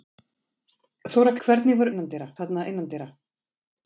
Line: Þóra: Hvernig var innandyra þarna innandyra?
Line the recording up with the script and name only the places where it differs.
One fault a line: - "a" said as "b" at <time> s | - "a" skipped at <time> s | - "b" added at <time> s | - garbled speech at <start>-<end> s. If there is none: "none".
none